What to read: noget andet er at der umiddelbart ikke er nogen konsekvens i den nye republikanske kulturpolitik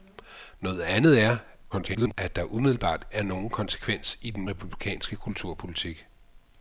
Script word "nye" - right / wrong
wrong